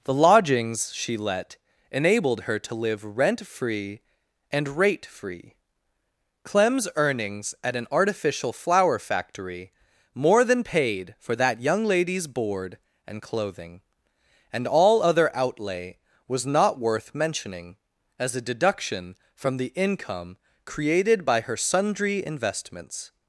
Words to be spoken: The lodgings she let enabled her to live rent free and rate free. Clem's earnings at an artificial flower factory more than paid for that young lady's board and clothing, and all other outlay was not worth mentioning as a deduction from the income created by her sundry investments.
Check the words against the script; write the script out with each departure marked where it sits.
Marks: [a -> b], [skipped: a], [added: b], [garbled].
The lodgings she let enabled her to live rent free and rate free. Clem's earnings at an artificial flower factory more than paid for that young lady's board and clothing, and all other outlay was not worth mentioning as a deduction from the income created by her sundry investments.